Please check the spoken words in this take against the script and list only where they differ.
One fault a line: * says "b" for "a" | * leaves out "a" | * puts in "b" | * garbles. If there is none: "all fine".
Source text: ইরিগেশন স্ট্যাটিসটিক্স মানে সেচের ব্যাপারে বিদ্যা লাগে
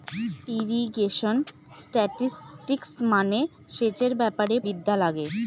all fine